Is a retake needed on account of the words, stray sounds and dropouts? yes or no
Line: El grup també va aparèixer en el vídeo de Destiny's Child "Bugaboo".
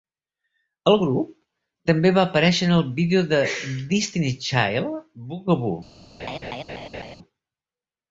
yes